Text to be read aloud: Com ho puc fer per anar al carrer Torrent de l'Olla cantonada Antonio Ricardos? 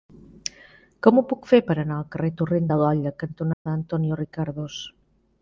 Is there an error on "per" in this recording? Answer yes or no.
no